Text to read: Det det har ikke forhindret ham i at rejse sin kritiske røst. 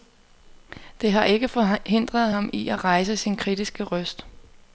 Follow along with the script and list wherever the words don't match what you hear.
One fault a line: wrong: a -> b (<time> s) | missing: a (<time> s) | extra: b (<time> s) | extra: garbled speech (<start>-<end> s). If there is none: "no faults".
missing: det (1.1 s)